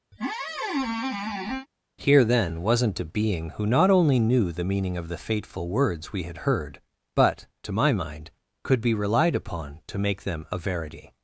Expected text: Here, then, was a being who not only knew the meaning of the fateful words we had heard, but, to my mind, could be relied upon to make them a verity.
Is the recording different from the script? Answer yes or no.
yes